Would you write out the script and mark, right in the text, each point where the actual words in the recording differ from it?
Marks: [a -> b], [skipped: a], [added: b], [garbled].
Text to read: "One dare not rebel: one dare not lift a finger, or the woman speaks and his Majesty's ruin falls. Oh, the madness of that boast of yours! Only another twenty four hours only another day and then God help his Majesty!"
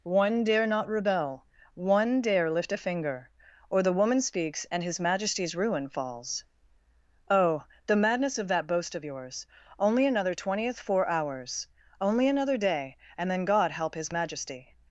"One dare not rebel: one dare [skipped: not] lift a finger, or the woman speaks and his Majesty's ruin falls. Oh, the madness of that boast of yours! Only another [twenty -> twentieth] four hours only another day and then God help his Majesty!"